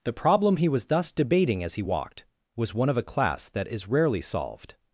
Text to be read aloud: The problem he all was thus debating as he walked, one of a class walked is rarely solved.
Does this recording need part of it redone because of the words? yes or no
yes